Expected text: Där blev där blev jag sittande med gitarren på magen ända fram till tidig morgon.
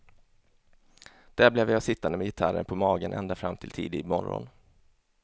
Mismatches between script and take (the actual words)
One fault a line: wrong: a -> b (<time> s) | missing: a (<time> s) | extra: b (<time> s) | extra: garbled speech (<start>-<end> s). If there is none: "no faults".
missing: där blev (1.7 s)